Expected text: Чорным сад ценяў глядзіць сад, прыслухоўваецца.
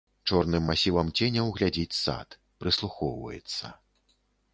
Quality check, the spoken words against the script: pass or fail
fail